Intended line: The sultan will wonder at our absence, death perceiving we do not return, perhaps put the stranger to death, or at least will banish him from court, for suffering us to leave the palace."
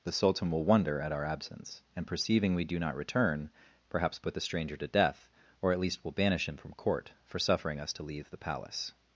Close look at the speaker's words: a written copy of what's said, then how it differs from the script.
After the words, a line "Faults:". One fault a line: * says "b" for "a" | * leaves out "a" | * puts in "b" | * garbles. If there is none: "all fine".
The sultan will wonder at our absence, and perceiving we do not return, perhaps put the stranger to death, or at least will banish him from court, for suffering us to leave the palace."
Faults:
* says "and" for "death"